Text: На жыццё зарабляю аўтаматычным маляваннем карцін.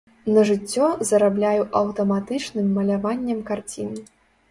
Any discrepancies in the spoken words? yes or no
no